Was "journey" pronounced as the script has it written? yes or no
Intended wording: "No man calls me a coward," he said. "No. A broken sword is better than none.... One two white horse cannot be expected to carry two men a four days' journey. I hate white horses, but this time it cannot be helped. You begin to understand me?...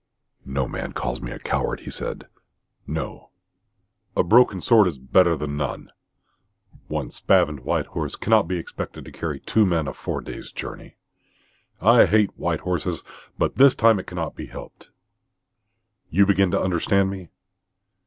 yes